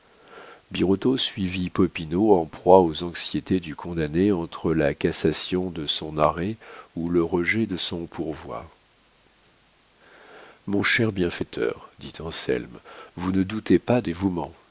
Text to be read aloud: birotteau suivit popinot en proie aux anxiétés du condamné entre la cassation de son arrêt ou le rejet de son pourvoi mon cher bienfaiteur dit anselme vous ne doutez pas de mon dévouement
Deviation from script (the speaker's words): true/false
true